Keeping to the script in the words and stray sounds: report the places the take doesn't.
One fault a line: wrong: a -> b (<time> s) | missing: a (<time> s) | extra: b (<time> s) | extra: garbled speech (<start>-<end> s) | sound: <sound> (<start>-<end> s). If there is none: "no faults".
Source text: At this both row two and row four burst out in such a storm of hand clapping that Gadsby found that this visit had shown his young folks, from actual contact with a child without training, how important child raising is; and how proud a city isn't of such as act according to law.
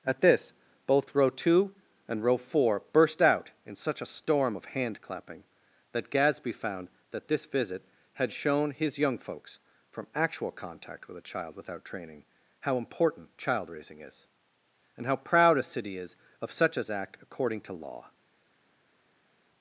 wrong: isn't -> is (16.0 s)